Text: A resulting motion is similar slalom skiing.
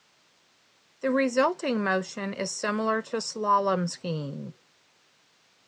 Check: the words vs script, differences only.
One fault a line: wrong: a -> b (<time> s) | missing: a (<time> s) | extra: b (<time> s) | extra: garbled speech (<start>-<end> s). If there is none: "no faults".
wrong: A -> The (1.0 s)
extra: to (3.0 s)